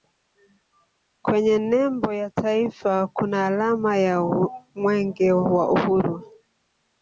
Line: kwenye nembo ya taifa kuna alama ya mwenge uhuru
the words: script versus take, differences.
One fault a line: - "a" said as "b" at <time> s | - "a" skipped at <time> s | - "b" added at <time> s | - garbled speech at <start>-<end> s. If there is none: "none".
- "wa" added at 5.3 s